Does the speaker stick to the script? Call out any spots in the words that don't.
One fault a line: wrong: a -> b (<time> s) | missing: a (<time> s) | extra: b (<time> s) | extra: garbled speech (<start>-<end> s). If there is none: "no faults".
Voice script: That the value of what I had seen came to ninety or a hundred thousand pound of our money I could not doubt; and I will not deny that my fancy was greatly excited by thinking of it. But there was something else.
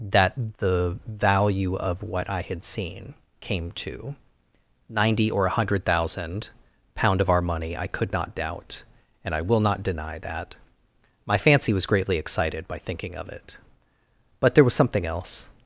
no faults